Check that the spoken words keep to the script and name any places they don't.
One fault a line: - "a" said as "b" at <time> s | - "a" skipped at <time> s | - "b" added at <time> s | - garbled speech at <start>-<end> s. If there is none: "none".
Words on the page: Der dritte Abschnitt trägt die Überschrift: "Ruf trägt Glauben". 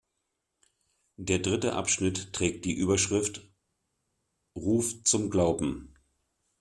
- "trägt" said as "zum" at 5.0 s